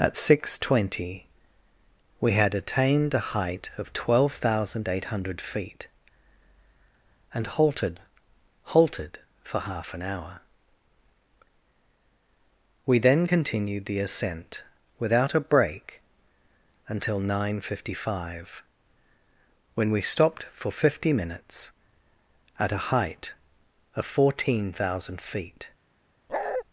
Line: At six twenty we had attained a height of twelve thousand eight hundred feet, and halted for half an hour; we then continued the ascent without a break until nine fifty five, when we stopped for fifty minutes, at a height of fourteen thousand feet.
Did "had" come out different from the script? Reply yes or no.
no